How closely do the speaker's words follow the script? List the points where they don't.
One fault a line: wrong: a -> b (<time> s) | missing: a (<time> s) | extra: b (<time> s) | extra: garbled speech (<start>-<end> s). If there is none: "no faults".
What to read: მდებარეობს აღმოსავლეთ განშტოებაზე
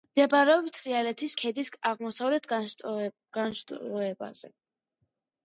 extra: თრიალეთის ქედის (0.7 s)